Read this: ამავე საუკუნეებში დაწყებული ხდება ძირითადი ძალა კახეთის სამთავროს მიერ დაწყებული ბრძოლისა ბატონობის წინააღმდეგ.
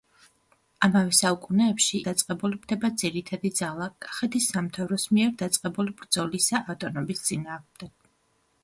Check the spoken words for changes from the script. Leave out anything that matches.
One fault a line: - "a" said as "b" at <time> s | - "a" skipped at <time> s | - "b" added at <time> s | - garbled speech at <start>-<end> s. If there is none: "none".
none